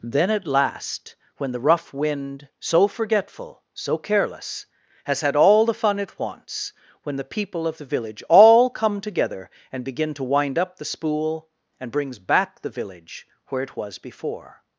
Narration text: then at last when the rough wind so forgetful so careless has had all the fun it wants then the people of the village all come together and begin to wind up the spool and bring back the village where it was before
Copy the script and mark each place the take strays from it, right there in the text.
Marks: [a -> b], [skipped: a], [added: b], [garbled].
then at last when the rough wind so forgetful so careless has had all the fun it wants [then -> when] the people of the village all come together and begin to wind up the spool and [bring -> brings] back the village where it was before